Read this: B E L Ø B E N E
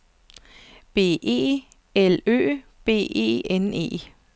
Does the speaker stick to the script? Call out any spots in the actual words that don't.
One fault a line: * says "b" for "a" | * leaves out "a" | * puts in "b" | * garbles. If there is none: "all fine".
all fine